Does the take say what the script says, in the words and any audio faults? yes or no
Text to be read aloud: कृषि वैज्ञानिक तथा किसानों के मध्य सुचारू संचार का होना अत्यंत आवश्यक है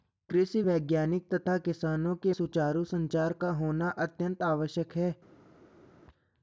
no